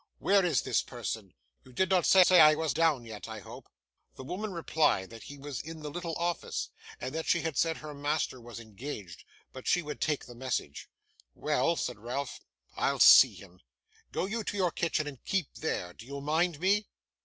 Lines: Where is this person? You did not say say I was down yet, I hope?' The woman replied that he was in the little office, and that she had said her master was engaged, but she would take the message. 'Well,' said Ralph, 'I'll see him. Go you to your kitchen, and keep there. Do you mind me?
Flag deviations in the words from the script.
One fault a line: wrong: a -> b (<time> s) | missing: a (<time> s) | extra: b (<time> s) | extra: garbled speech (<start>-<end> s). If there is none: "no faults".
no faults